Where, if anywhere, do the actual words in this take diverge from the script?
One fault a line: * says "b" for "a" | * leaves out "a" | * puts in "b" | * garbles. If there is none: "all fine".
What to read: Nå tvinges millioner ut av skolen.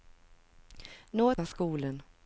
* leaves out "tvinges millioner ut"